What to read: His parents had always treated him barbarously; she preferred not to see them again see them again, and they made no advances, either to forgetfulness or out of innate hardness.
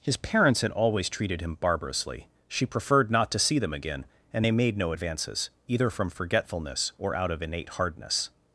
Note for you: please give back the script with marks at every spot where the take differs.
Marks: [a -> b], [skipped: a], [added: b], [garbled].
His parents had always treated him barbarously; she preferred not to see them again [skipped: see them again,] and they made no advances, either [to -> from] forgetfulness or out of innate hardness.